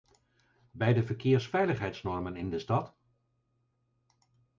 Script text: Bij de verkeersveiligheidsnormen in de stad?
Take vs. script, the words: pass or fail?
pass